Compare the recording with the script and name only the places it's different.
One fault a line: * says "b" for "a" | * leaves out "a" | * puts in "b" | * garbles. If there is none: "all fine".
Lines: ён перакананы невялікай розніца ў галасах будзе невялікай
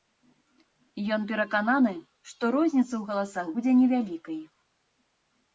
* says "што" for "невялікай"